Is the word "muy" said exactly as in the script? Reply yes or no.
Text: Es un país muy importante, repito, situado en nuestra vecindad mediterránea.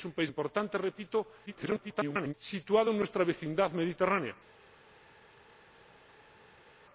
no